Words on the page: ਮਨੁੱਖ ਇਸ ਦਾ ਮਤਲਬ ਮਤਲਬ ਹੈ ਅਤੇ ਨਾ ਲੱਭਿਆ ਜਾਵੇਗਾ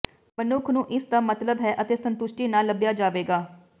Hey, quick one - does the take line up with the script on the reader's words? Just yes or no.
no